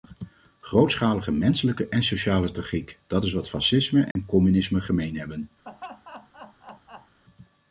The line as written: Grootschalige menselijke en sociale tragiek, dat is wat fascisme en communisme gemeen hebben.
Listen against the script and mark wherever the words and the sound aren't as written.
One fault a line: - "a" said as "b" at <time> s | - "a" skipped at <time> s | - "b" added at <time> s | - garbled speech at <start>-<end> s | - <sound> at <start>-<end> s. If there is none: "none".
- dropout at 4.1-4.2 s
- laugh at 5.6-7.2 s